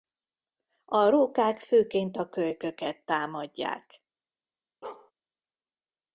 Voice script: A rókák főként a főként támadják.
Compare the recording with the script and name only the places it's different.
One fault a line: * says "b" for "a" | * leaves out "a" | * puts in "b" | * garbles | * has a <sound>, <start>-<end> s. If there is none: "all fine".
* says "kölyköket" for "főként"
* has a bark, 4.8-5.1 s